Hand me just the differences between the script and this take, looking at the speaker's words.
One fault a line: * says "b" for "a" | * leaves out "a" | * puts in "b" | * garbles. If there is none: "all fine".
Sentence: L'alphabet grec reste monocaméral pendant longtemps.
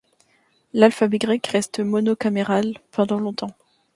all fine